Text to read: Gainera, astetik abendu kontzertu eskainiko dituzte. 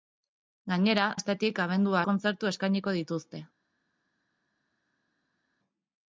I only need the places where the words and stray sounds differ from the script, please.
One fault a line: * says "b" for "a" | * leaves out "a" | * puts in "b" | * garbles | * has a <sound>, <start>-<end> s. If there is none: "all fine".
all fine